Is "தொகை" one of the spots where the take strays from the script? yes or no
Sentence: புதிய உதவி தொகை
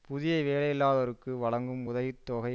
no